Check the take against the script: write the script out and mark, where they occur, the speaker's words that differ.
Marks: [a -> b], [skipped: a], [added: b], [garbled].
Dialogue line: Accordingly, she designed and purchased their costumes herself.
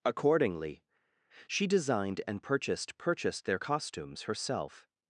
Accordingly, she designed and purchased [added: purchased] their costumes herself.